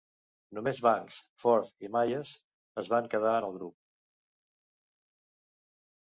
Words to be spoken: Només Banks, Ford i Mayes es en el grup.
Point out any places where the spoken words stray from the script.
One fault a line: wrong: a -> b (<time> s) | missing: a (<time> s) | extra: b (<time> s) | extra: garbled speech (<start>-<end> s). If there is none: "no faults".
extra: van quedar (3.0 s)